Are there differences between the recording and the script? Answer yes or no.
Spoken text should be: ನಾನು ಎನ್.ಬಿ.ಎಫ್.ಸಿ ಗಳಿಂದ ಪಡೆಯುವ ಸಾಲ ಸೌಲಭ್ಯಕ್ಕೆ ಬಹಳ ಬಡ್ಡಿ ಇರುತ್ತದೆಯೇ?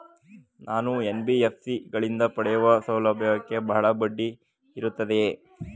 yes